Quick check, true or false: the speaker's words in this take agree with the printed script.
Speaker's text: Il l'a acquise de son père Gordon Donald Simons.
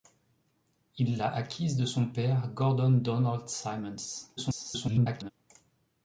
false